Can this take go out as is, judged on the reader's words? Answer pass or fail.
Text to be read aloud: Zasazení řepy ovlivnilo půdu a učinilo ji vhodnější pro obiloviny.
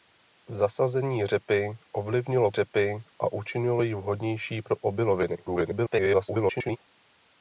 fail